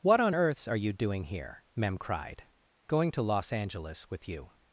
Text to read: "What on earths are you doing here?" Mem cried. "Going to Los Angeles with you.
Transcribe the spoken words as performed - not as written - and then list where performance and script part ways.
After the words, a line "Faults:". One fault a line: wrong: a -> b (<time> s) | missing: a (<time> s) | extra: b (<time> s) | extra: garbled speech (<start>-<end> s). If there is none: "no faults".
"What on earths are you doing here?" Mem cried. "Going to Los Angeles with you.
Faults:
no faults